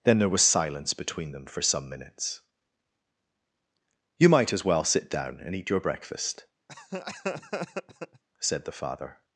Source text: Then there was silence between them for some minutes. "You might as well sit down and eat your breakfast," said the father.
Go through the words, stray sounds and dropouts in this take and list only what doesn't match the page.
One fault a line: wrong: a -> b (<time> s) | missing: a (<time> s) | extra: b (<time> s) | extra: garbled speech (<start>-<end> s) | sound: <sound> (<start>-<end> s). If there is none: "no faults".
sound: laugh (6.7-8.2 s)